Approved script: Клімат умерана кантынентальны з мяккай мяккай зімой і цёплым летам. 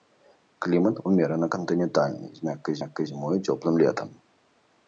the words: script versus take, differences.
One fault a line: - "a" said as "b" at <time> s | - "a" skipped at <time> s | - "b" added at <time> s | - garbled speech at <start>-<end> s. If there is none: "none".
none